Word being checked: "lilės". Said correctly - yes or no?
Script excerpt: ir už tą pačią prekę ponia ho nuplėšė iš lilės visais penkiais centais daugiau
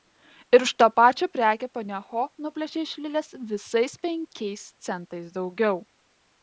yes